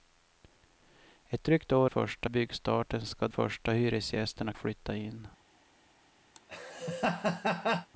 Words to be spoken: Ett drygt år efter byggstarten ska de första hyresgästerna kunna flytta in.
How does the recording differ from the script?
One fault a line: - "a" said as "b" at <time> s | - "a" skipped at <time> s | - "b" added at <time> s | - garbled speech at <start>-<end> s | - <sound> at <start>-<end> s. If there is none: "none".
- "efter" said as "första" at 1.8 s
- "de" skipped at 3.3 s
- "kunna" skipped at 4.5 s
- laugh at 6.3-7.9 s